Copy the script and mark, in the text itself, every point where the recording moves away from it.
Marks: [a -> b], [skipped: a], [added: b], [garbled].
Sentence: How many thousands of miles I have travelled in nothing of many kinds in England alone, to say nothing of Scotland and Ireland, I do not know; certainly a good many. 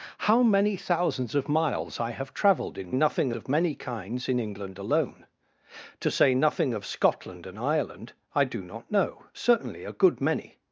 How many thousands of miles I have travelled in nothing of many kinds in England alone, to say nothing of Scotland and Ireland, I do not know; certainly a good many.